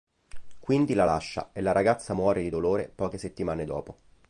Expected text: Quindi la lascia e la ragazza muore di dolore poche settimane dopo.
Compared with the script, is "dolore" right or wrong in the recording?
right